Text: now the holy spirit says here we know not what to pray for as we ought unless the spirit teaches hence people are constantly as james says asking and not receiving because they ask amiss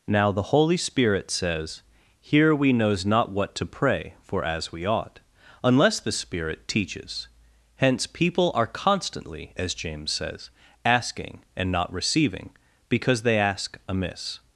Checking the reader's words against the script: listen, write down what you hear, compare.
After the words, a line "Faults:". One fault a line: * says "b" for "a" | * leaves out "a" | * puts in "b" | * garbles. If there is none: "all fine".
now the holy spirit says here we knows not what to pray for as we ought unless the spirit teaches hence people are constantly as james says asking and not receiving because they ask amiss
Faults:
* says "knows" for "know"